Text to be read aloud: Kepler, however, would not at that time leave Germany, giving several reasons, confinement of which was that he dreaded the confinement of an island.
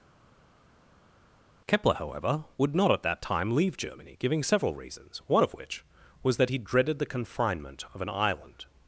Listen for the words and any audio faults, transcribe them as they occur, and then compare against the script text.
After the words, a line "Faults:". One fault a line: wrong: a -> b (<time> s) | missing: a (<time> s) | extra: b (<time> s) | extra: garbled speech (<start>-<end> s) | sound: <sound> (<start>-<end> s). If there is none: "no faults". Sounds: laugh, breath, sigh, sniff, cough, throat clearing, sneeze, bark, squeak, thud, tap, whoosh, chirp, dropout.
Kepler, however, would not at that time leave Germany, giving several reasons, one of which was that he dreaded the confinement of an island.
Faults:
wrong: confinement -> one (5.3 s)